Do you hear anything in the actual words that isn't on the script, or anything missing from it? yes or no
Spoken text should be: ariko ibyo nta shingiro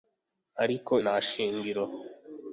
yes